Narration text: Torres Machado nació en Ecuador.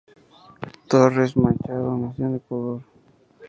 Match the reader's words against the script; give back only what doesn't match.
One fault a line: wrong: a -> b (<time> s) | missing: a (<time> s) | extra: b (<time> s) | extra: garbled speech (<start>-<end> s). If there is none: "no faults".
no faults